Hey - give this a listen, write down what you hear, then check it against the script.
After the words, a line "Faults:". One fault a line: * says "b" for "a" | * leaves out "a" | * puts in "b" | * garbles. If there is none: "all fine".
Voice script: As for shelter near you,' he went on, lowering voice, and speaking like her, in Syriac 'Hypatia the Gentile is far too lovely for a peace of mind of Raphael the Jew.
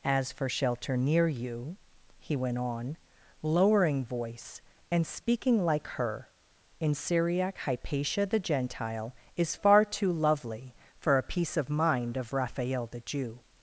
As for shelter near you,' he went on, lowering voice, and speaking like her, in Syriac 'Hypatia the Gentile is far too lovely for a peace of mind of Raphael the Jew.
Faults:
all fine